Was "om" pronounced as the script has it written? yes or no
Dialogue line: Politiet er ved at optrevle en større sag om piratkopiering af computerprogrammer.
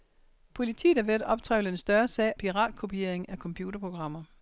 no